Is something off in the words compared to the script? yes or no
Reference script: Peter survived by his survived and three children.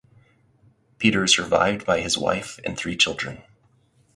yes